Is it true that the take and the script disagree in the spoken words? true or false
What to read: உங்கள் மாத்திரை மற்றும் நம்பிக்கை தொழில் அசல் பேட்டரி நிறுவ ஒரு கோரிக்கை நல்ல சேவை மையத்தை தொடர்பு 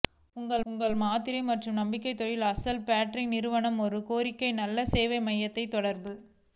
true